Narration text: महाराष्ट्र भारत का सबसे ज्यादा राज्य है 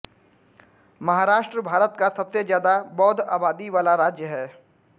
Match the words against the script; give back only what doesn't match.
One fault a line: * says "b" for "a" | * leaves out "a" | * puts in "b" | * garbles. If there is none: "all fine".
* puts in "बौद्ध आबादी वाला"